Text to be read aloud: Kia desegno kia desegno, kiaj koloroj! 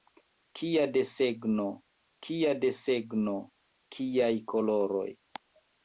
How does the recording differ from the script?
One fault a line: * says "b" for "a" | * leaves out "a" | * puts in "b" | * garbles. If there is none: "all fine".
all fine